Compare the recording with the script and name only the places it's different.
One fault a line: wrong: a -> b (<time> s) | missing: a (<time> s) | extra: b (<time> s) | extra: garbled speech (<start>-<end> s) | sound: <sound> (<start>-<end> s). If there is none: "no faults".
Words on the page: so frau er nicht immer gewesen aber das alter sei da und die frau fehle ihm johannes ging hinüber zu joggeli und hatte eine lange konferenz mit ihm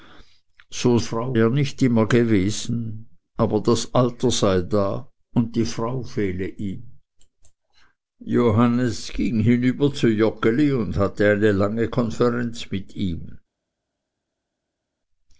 no faults